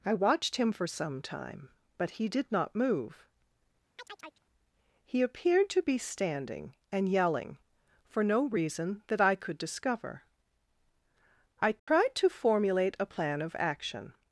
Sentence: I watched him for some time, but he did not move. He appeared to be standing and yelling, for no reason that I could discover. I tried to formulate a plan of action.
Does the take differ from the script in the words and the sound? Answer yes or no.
yes